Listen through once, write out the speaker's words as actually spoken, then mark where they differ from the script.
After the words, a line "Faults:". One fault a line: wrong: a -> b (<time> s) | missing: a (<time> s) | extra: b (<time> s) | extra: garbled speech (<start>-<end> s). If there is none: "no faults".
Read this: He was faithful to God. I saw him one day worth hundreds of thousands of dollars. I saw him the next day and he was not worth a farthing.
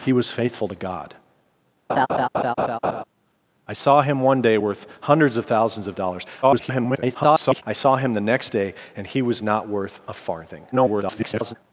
He was faithful to God. I saw him one day worth hundreds of thousands of dollars. [garbled] I saw him the next day and he was not worth a farthing. [garbled]
Faults:
extra: garbled speech (6.4-7.6 s)
extra: garbled speech (10.7-11.6 s)